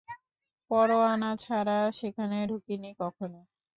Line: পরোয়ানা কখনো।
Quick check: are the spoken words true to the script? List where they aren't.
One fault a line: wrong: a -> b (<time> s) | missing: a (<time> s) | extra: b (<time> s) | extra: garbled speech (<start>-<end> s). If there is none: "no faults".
extra: ছাড়া সেখানে ঢুকিনি (1.4 s)